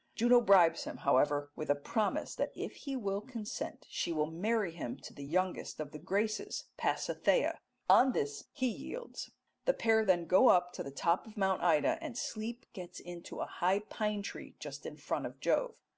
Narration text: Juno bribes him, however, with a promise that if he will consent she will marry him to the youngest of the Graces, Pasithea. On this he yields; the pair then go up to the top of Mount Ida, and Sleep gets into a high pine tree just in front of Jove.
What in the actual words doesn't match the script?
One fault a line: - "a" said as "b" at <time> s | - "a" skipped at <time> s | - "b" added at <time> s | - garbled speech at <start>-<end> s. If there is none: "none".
none